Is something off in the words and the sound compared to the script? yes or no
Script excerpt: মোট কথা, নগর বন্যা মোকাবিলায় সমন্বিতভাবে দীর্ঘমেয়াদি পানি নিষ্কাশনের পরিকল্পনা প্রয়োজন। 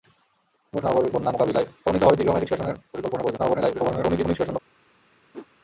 yes